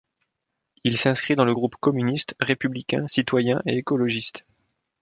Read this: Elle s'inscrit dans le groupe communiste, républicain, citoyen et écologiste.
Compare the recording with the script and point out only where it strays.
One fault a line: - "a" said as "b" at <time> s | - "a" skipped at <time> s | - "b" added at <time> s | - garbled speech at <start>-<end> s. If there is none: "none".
- "Elle" said as "Il" at 0.8 s